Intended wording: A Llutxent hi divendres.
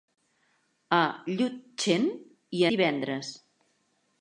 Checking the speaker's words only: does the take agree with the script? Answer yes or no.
yes